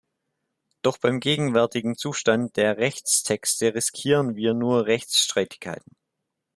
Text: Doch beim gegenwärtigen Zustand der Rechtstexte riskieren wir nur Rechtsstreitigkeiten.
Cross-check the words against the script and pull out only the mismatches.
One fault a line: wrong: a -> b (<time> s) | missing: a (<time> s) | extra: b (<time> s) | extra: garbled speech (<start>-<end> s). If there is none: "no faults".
no faults